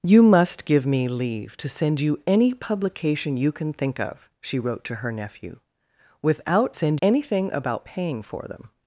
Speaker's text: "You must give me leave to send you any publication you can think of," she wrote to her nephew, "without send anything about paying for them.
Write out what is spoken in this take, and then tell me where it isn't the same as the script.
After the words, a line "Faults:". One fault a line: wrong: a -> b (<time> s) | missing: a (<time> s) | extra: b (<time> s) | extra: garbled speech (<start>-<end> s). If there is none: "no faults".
"You must give me leave to send you any publication you can think of," she wrote to her nephew, "without send anything about paying for them.
Faults:
no faults